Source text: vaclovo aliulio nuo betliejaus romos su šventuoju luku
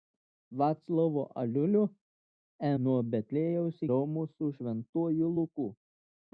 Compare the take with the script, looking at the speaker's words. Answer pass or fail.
pass